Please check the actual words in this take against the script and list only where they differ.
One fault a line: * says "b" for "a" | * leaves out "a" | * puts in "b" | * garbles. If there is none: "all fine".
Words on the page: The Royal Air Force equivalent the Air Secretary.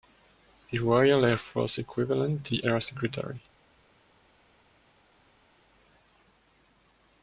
all fine